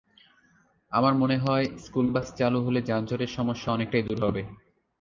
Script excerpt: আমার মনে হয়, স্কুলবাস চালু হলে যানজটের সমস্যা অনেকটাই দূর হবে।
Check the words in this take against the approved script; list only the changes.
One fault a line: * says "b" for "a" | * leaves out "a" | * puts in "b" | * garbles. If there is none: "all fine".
all fine